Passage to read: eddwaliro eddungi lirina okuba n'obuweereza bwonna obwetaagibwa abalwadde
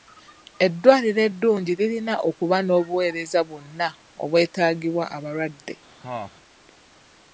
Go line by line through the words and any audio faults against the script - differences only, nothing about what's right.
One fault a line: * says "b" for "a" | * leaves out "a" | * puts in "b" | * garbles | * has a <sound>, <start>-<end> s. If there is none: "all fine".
* has a cough, 6.0-6.3 s